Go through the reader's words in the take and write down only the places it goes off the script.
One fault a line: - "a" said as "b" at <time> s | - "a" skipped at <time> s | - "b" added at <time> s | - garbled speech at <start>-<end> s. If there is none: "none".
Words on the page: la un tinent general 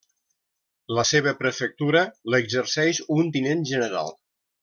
- "seva prefectura l'exerceix" added at 1.1 s